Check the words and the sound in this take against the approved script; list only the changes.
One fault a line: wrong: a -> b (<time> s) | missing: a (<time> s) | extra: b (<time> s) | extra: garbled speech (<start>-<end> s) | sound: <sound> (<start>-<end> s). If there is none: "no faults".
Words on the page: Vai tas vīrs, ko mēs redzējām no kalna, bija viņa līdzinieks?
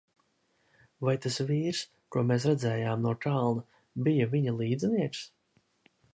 no faults